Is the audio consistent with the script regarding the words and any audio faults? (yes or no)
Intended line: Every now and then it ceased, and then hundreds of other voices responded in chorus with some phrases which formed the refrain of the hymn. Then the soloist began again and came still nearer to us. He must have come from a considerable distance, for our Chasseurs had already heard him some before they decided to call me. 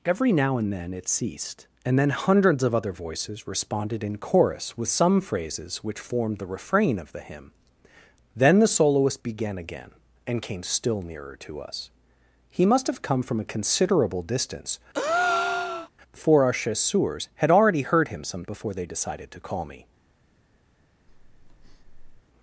no